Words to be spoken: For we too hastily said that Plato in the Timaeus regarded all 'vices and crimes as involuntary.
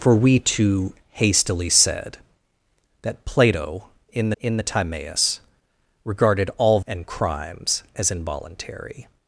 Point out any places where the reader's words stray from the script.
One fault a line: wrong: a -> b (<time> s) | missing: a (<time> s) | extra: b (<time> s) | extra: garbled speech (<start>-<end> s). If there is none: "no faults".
extra: in (4.4 s)
missing: vices (6.8 s)